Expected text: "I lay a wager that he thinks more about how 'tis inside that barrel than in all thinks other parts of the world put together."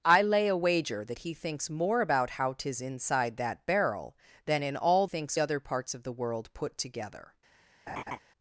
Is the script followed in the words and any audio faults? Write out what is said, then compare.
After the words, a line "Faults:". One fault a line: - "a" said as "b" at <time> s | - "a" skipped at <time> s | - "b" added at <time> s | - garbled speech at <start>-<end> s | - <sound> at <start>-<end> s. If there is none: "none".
"I lay a wager that he thinks more about how 'tis inside that barrel than in all thinks other parts of the world put together."
Faults:
- laugh at 7.9-8.2 s